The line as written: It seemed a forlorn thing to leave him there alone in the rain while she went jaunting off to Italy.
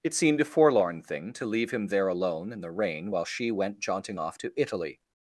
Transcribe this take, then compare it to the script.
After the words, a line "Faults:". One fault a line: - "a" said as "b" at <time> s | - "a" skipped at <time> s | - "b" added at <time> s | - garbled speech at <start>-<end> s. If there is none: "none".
It seemed a forlorn thing to leave him there alone in the rain while she went jaunting off to Italy.
Faults:
none